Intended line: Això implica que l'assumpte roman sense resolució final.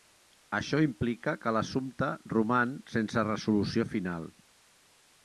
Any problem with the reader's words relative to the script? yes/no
no